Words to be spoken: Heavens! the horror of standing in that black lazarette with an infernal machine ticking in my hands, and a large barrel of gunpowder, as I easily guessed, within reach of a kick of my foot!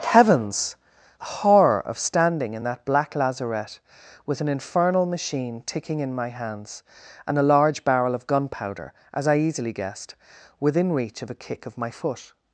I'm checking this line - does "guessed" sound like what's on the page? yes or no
yes